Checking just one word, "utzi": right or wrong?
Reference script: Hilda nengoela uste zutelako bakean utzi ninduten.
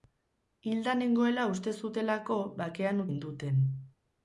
wrong